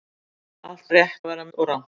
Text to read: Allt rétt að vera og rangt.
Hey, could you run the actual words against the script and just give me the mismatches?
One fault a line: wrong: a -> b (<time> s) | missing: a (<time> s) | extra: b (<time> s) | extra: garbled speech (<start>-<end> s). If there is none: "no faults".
no faults